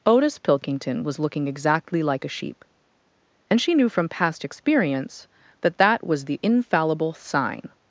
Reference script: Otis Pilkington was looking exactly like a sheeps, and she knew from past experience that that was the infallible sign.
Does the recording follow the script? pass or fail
fail